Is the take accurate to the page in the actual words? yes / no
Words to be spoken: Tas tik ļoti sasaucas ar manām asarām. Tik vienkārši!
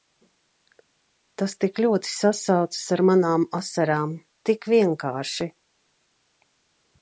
yes